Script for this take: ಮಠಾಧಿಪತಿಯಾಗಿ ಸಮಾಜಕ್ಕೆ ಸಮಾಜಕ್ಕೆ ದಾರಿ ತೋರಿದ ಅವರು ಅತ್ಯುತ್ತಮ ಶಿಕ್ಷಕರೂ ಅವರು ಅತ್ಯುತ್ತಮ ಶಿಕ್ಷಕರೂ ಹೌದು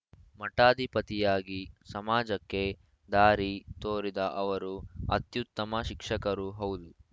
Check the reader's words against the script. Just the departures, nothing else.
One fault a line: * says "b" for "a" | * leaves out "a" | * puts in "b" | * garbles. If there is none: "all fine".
* leaves out "ಸಮಾಜಕ್ಕೆ"
* leaves out "ಅವರು ಅತ್ಯುತ್ತಮ ಶಿಕ್ಷಕರೂ"